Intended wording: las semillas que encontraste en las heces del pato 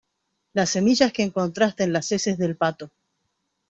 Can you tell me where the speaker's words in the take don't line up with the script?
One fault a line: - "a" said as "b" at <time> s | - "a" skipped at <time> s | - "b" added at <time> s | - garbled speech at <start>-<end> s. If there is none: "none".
none